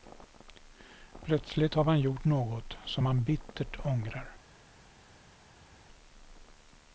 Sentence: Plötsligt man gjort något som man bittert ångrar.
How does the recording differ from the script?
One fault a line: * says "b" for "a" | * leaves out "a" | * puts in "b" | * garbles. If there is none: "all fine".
* puts in "har"